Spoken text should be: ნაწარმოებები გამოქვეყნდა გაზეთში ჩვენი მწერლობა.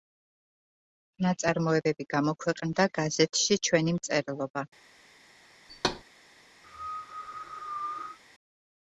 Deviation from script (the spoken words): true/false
false